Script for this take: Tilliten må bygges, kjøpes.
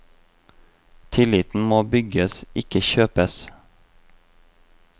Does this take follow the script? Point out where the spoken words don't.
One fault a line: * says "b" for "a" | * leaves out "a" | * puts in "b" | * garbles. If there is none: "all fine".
* puts in "ikke"